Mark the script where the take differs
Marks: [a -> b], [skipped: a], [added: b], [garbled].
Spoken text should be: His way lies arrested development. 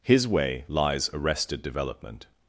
His way lies arrested development.